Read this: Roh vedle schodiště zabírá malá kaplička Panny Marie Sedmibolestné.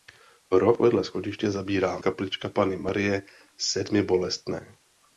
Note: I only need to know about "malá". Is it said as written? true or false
false